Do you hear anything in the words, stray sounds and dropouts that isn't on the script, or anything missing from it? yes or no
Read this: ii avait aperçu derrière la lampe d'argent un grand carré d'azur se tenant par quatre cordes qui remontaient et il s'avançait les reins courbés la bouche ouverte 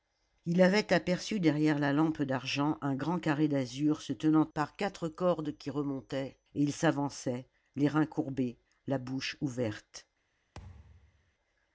yes